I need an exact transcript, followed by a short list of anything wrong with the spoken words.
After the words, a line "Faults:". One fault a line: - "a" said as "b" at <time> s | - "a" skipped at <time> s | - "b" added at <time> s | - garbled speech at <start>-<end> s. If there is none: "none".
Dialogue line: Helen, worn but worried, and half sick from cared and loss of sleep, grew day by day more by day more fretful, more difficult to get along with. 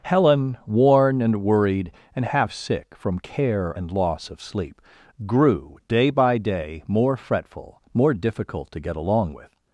Helen, worn and worried, and half sick from care and loss of sleep, grew day by day more fretful, more difficult to get along with.
Faults:
- "but" said as "and" at 1.2 s
- "cared" said as "care" at 3.2 s
- "by day more" skipped at 7.2 s